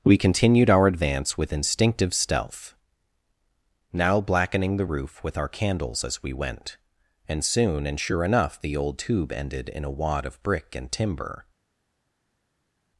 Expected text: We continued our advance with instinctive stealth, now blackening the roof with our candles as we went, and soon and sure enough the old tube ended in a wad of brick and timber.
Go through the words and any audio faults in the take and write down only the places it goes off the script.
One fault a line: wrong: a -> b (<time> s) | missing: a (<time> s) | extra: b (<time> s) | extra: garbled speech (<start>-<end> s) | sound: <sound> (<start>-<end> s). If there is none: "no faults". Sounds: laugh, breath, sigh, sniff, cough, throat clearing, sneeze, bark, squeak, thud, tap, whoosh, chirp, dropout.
no faults